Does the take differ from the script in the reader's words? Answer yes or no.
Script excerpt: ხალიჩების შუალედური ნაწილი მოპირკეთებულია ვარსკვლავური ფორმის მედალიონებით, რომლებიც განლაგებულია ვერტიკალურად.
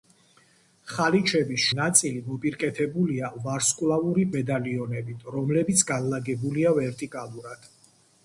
yes